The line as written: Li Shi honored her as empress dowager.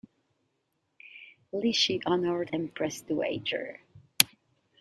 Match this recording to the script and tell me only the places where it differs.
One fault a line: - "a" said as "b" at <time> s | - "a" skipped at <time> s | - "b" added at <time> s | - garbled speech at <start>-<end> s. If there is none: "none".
- "her as" skipped at 2.5 s